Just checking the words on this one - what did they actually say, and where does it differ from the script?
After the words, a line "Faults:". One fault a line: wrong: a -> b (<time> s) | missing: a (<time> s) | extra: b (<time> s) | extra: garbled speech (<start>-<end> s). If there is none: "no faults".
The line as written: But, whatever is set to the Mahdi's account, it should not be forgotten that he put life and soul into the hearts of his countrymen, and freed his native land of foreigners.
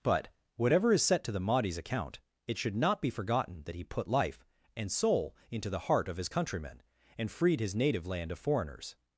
But, whatever is set to the Mahdi's account, it should not be forgotten that he put life and soul into the heart of his countrymen, and freed his native land of foreigners.
Faults:
wrong: hearts -> heart (5.8 s)